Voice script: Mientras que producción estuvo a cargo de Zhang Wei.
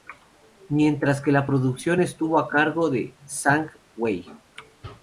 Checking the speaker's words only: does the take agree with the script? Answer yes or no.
no